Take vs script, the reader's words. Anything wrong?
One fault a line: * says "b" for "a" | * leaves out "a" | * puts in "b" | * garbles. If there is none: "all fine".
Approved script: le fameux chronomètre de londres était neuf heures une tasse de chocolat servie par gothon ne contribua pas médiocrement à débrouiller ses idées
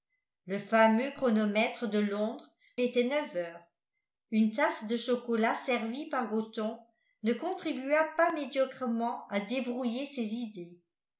all fine